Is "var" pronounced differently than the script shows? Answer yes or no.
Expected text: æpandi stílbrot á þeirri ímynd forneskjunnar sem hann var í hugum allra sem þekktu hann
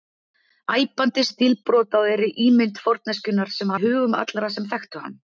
yes